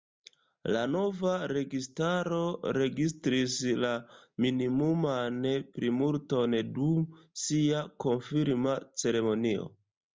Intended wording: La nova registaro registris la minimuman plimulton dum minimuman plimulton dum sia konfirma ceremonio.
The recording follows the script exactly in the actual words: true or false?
false